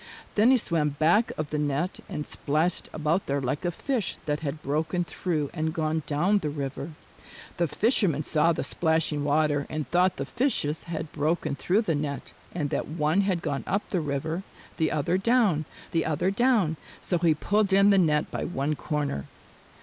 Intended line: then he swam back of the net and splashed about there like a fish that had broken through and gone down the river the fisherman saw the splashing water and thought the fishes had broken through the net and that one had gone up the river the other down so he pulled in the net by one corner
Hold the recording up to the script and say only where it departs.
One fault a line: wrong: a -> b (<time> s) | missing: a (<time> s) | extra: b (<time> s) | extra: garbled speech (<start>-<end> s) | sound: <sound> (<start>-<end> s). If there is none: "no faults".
extra: the other down (15.9 s)